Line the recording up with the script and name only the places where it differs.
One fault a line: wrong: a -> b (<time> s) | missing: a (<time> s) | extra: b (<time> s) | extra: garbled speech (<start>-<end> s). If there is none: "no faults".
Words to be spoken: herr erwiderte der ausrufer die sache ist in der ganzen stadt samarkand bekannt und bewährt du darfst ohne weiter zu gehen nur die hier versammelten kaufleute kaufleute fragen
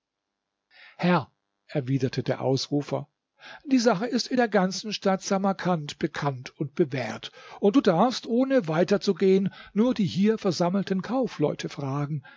extra: und (7.6 s)
missing: kaufleute (11.7 s)